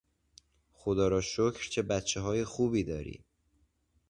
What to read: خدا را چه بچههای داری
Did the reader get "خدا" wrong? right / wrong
right